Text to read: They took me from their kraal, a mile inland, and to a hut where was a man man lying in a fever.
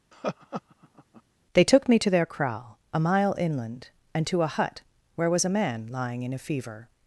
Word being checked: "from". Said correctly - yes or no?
no